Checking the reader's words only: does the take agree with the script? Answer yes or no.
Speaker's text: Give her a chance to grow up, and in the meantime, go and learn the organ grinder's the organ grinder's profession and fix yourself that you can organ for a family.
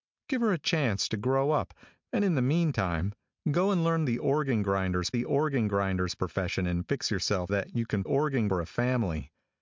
yes